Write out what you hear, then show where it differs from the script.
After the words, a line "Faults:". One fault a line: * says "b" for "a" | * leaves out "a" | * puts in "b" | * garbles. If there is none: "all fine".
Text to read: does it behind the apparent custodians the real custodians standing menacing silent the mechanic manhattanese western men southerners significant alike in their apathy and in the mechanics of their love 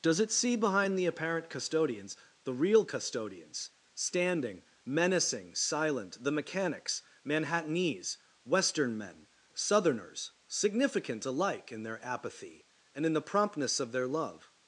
does it see behind the apparent custodians the real custodians standing menacing silent the mechanics manhattanese western men southerners significant alike in their apathy and in the promptness of their love
Faults:
* puts in "see"
* says "mechanics" for "mechanic"
* says "promptness" for "mechanics"